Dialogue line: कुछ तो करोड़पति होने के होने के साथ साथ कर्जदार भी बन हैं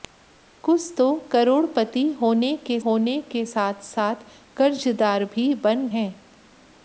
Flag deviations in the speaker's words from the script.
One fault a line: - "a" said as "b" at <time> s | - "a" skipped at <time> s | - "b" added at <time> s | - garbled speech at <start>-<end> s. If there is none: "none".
none